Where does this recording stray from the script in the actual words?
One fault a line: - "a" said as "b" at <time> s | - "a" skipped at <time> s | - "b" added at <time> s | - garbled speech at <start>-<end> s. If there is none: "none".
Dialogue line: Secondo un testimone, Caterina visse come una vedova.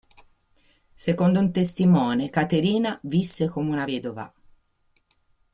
none